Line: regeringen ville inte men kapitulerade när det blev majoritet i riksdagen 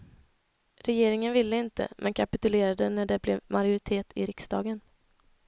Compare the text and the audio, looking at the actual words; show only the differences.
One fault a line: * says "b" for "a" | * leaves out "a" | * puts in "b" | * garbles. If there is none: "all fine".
all fine